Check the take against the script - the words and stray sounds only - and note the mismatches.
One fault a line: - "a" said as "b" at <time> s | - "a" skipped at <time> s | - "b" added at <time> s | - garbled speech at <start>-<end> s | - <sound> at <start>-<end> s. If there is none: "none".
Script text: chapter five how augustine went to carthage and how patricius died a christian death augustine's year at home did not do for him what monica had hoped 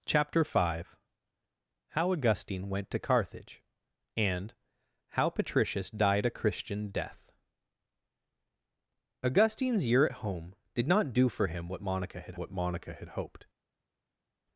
- "what monica had" added at 12.4 s